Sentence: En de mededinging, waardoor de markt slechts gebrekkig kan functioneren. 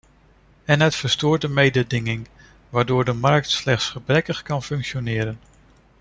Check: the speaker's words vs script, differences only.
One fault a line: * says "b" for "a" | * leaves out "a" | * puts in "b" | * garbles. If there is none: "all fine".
* puts in "het verstoort"